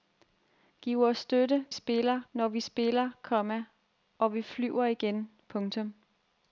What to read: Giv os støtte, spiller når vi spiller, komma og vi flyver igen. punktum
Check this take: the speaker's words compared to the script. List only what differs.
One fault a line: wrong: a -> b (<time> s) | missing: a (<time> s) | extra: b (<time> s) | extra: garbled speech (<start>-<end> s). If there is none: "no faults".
no faults